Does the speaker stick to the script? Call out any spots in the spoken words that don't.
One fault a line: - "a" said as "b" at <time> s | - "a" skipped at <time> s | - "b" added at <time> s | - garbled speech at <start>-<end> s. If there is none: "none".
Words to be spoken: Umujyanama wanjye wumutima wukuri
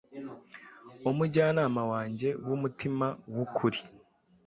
none